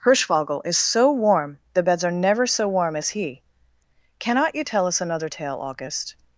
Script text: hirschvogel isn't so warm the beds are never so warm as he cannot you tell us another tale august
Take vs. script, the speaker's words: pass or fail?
fail